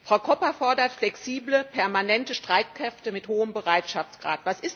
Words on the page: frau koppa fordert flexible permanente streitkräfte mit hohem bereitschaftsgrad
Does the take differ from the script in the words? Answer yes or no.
no